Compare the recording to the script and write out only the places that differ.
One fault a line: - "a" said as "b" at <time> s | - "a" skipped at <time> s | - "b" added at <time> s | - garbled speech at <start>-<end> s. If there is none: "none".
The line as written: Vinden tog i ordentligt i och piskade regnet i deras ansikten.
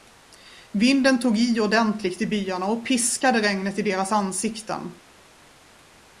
- "byarna" added at 2.3 s